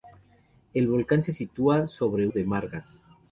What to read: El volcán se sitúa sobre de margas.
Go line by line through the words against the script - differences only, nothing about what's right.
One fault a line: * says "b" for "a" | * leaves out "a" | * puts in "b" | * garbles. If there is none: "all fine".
all fine